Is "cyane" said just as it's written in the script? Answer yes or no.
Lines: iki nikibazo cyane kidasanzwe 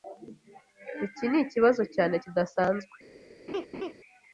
yes